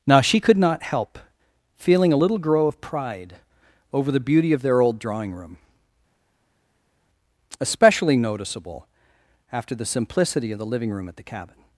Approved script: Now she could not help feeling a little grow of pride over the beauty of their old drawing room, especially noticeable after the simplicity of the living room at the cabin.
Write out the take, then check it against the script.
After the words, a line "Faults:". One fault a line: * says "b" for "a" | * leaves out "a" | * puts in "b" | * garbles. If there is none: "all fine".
Now she could not help feeling a little grow of pride over the beauty of their old drawing room, especially noticeable after the simplicity of the living room at the cabin.
Faults:
all fine